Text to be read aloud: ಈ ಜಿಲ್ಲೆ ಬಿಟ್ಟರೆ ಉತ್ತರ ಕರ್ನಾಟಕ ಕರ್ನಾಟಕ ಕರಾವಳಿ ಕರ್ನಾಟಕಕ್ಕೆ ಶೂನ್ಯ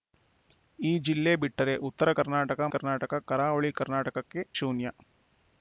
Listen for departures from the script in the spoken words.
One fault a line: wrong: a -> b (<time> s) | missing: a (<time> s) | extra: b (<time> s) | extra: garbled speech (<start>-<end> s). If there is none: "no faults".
no faults